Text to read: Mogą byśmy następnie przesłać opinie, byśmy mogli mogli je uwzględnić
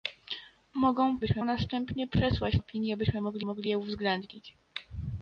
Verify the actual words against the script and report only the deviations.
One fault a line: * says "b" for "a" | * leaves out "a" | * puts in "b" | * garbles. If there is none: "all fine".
all fine